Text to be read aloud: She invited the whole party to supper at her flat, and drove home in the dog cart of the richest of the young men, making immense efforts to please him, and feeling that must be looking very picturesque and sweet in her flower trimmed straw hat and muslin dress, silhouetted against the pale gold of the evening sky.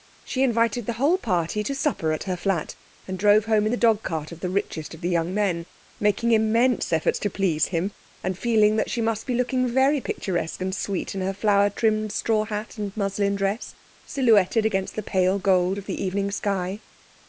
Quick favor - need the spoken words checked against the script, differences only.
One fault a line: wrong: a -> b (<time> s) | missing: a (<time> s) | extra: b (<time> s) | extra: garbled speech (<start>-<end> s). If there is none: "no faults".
extra: she (8.9 s)